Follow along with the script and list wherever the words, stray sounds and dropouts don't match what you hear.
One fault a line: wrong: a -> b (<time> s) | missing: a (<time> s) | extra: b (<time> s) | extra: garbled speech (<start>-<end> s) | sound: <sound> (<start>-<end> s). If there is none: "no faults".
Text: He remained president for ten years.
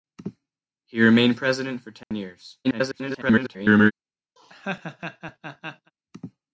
sound: dropout (2.0-2.1 s)
extra: garbled speech (2.6-3.9 s)
sound: laugh (4.4-5.9 s)